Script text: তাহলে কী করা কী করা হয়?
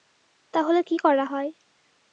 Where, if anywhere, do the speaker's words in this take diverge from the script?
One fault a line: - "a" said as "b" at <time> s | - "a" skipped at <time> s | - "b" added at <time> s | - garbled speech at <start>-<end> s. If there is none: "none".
- "কী করা" skipped at 1.2 s